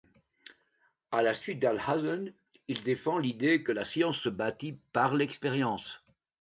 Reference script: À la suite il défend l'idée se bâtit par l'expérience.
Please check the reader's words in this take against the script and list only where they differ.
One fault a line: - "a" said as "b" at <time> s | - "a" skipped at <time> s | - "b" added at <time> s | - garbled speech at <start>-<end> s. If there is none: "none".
- "d'Alhazen" added at 1.6 s
- "que la science" added at 3.6 s